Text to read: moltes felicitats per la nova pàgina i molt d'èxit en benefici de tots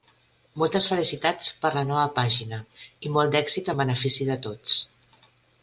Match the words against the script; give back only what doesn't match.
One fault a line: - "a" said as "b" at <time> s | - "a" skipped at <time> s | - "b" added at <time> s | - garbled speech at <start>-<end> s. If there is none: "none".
none